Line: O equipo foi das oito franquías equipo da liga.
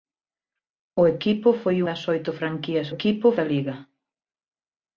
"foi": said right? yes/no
yes